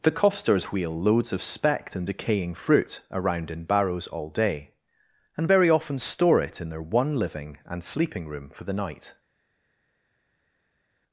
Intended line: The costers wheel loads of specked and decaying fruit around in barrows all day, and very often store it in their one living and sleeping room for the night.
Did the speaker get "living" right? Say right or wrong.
right